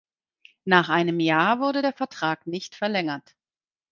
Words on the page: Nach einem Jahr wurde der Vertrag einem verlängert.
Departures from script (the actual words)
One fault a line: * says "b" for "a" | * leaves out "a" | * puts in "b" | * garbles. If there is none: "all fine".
* says "nicht" for "einem"